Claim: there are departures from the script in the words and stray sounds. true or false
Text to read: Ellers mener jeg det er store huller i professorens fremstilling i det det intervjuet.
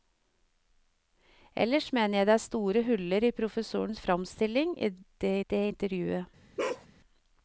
true